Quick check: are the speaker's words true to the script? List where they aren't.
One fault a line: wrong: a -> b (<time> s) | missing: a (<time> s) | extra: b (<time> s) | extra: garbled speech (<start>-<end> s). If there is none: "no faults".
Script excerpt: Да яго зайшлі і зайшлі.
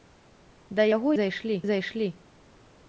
no faults